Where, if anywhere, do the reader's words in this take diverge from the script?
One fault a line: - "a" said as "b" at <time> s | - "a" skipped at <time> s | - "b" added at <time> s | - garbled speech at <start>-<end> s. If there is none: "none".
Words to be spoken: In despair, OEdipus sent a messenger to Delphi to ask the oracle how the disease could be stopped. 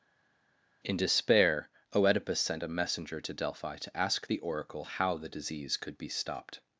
none